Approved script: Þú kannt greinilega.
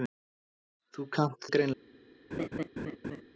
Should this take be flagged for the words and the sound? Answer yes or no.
yes